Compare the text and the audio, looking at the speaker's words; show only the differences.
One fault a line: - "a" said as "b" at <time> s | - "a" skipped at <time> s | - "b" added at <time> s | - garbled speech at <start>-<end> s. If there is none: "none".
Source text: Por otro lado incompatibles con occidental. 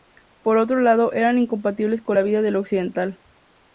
- "eran" added at 1.1 s
- "la vida del" added at 2.1 s